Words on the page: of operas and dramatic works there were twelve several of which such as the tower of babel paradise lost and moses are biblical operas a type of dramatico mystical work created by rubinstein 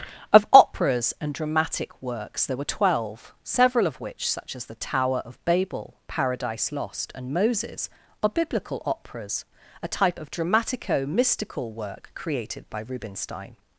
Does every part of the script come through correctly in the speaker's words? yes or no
yes